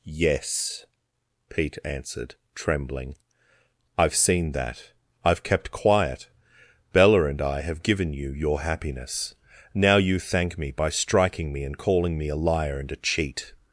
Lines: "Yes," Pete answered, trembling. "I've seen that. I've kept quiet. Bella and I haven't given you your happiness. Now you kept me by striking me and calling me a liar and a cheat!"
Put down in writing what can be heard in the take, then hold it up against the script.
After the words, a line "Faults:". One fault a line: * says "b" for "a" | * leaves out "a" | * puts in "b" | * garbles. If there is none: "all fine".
"Yes," Pete answered, trembling. "I've seen that. I've kept quiet. Bella and I have given you your happiness. Now you thank me by striking me and calling me a liar and a cheat!"
Faults:
* says "have" for "haven't"
* says "thank" for "kept"